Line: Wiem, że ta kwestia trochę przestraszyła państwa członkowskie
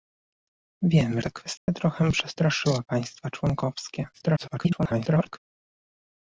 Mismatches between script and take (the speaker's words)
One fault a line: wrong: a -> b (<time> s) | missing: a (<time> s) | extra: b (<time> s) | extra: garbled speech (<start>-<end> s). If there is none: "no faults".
missing: że (1.2 s)
extra: garbled speech (4.1-5.4 s)